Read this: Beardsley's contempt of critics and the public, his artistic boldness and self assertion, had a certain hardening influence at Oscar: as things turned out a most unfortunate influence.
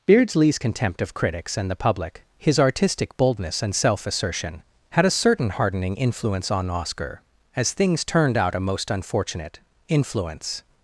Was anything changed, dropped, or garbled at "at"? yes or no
yes